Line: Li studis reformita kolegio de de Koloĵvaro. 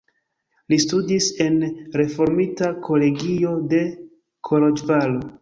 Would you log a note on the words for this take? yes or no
yes